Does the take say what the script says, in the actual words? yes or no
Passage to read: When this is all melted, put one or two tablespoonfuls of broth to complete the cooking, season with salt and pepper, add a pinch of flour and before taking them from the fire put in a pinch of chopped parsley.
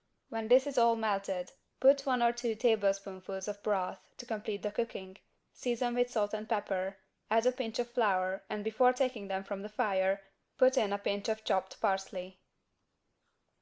yes